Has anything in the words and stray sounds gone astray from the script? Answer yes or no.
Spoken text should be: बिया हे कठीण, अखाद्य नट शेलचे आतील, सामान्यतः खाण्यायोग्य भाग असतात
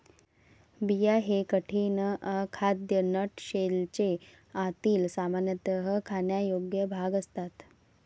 no